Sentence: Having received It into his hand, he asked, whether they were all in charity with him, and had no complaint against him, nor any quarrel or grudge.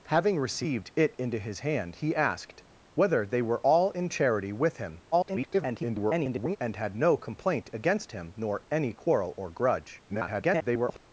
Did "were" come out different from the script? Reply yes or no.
no